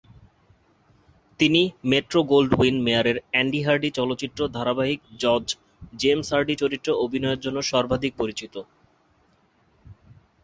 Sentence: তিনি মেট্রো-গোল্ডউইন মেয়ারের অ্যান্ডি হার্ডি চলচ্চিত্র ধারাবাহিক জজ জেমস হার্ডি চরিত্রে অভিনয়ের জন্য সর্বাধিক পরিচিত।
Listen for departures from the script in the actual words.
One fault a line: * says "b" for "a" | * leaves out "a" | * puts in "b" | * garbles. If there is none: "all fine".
all fine